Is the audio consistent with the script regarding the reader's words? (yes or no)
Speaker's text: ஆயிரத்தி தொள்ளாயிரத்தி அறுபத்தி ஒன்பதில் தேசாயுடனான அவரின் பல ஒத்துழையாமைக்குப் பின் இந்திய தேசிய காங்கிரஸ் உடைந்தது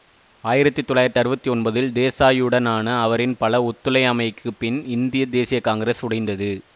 yes